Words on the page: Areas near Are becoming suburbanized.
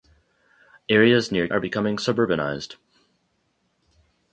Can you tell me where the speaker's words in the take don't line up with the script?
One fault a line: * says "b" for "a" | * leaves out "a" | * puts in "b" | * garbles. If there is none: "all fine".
all fine